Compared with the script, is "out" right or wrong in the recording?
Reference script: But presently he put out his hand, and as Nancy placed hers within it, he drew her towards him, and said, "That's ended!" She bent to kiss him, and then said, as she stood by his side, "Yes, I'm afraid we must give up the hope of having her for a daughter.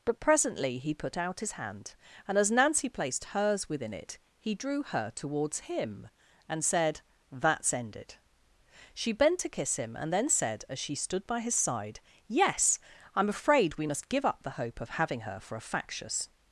right